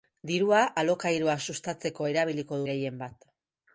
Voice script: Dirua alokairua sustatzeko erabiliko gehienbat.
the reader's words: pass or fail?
pass